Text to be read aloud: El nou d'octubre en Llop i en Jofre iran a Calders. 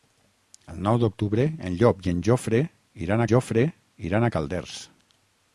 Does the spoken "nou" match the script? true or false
true